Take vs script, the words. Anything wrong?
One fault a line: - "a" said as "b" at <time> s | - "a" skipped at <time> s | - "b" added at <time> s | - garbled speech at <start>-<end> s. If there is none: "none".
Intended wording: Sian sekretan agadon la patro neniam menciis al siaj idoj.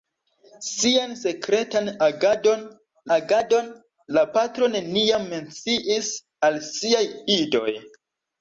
- "agadon" added at 3.2 s